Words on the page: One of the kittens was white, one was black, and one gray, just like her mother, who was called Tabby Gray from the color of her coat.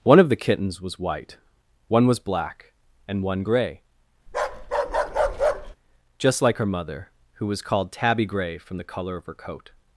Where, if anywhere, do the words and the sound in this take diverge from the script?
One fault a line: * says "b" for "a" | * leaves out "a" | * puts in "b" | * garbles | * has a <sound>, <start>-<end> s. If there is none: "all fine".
* has a bark, 4.3-5.8 s